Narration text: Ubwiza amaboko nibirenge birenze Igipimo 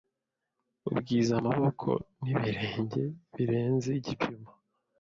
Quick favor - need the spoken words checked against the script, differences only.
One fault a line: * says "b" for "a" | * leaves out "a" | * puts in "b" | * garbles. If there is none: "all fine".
all fine